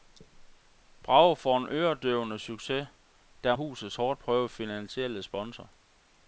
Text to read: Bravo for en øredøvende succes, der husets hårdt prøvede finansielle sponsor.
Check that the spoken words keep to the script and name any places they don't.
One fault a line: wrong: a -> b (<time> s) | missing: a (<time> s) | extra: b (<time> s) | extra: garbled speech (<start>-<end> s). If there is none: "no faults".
no faults